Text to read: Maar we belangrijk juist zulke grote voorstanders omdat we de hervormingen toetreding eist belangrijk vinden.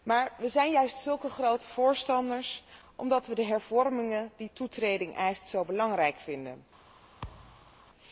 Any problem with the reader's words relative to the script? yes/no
yes